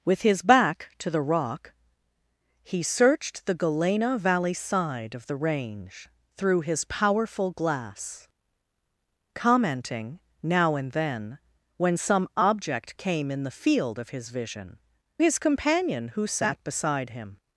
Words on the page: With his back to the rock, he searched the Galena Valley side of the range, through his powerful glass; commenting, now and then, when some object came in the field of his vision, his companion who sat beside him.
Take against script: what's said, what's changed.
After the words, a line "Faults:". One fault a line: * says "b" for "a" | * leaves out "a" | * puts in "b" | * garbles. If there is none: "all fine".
With his back to the rock, he searched the Galena Valley side of the range, through his powerful glass; commenting, now and then, when some object came in the field of his vision, his companion who sat beside him.
Faults:
all fine